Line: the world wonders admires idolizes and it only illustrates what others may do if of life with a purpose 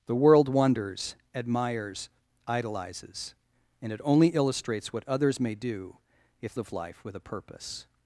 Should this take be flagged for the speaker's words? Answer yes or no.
no